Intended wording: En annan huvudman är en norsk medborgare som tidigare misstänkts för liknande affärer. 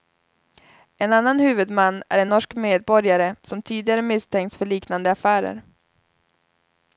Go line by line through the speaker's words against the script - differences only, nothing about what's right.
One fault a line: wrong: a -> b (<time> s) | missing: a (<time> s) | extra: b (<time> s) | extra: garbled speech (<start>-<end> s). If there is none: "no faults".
no faults